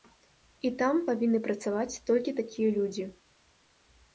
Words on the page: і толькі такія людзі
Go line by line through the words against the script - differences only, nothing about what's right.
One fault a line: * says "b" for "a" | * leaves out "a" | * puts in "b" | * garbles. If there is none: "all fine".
* puts in "там павінны працаваць"